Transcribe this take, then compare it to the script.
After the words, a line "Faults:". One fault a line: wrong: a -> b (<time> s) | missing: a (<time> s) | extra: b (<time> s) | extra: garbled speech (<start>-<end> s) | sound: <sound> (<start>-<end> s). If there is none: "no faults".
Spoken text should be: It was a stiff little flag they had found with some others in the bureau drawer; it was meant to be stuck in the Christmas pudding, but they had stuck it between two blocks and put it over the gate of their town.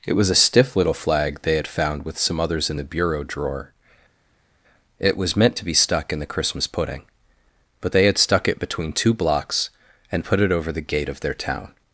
It was a stiff little flag they had found with some others in the bureau drawer; it was meant to be stuck in the Christmas pudding, but they had stuck it between two blocks and put it over the gate of their town.
Faults:
no faults